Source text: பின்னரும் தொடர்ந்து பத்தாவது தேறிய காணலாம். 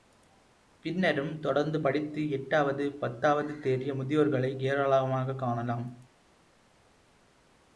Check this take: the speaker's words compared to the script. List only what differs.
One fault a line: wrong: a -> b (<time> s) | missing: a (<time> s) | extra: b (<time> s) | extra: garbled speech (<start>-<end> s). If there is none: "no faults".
extra: படித்து எட்டாவது (1.8 s)
extra: முதியோர்களை ஏராளமாகக் (3.9 s)